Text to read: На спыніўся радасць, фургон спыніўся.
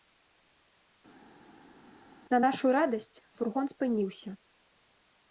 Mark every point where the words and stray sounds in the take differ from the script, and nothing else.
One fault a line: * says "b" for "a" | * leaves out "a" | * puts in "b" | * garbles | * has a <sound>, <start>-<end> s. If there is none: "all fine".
* says "нашу" for "спыніўся"